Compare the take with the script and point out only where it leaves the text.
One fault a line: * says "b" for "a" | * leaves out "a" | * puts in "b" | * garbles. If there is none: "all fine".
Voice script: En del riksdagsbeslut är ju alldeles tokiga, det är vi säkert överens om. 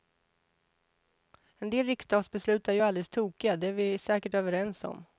all fine